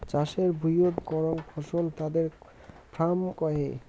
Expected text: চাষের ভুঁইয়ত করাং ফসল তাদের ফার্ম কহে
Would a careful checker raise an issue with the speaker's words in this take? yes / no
no